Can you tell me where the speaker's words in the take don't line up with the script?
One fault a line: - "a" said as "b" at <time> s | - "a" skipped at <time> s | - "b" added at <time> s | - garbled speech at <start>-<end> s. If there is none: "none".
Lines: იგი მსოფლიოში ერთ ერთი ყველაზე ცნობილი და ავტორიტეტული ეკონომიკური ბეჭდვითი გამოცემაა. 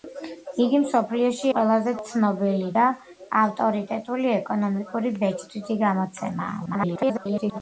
- "ერთ ერთი" skipped at 1.5 s
- garbled speech at 6.7-7.6 s